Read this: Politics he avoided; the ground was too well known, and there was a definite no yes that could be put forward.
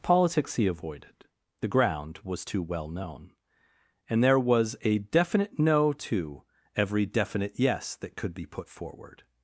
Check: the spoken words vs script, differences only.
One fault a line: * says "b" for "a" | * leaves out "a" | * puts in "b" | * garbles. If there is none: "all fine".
* puts in "to every definite"